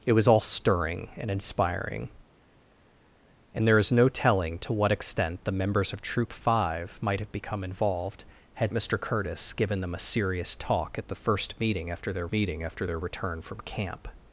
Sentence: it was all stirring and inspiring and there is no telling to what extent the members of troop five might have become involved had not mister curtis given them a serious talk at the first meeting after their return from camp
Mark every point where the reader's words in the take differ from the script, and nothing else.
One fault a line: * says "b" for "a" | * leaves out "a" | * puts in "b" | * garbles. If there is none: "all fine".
* leaves out "not"
* puts in "meeting after their"